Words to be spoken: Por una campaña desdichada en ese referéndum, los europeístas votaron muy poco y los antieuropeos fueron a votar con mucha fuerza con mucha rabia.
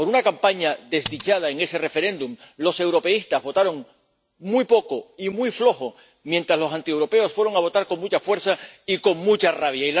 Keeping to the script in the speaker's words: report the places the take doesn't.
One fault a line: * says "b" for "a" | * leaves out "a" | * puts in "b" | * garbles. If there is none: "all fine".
* puts in "muy flojo mientras"
* puts in "y"